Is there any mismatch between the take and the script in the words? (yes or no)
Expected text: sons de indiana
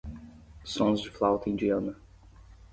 yes